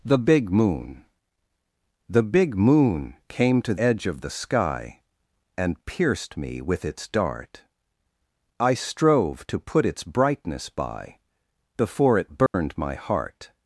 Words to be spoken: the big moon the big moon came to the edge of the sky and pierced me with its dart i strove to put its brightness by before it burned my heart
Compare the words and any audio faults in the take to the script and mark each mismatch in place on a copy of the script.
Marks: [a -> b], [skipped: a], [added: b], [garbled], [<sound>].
the big moon the big moon came to [skipped: the] edge of the sky and pierced me with its dart i strove to put its brightness by before it burned [dropout] my heart